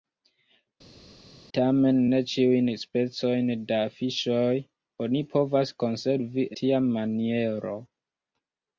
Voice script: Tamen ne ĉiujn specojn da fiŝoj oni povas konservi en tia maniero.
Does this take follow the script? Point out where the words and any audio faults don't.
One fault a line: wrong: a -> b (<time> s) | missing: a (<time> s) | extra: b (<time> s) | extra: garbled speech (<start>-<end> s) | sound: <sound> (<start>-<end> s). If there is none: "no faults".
missing: en (6.5 s)